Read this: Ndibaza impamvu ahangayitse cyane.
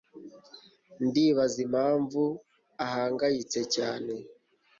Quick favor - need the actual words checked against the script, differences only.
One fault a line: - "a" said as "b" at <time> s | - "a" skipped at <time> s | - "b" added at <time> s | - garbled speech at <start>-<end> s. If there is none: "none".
none